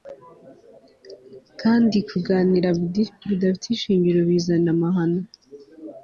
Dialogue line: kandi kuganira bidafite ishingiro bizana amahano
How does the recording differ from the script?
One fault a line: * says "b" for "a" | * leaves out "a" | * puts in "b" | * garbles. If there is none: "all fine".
all fine